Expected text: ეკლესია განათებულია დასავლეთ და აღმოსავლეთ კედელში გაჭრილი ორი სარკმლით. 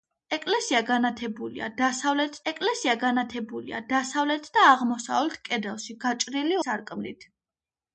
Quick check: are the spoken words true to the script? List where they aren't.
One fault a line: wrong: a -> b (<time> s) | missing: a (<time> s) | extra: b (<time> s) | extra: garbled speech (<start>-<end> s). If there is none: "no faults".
extra: ეკლესია განათებულია დასავლეთ (2.5 s)
missing: ორი (6.6 s)